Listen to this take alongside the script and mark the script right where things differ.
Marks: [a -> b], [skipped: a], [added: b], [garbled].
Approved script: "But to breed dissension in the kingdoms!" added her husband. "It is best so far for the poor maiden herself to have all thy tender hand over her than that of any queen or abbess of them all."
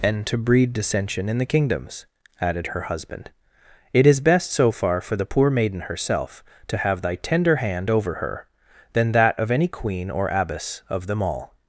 ["But -> And] to breed dissension in the kingdoms!" added her husband. "It is best so far for the poor maiden herself to have [skipped: all] thy tender hand over her than that of any queen or abbess of them all."